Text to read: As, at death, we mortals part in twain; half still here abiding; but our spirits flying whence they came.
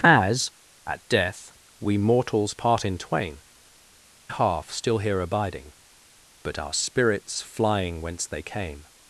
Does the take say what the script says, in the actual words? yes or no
yes